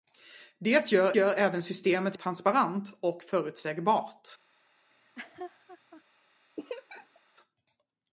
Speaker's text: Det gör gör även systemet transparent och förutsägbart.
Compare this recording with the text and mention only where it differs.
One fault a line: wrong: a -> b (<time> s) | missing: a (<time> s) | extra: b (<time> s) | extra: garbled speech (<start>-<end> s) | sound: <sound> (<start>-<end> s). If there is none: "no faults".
sound: laugh (4.9-6.0 s)
sound: laugh (6.6-7.2 s)